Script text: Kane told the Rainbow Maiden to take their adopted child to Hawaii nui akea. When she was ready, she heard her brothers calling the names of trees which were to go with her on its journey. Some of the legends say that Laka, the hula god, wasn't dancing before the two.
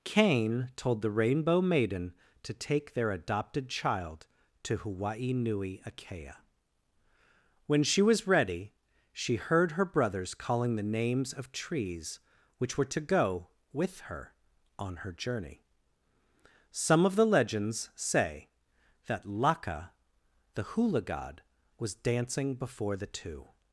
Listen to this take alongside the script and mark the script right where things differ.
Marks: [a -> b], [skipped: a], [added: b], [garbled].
Kane told the Rainbow Maiden to take their adopted child to Hawaii nui akea. When she was ready, she heard her brothers calling the names of trees which were to go with her on [its -> her] journey. Some of the legends say that Laka, the hula god, [wasn't -> was] dancing before the two.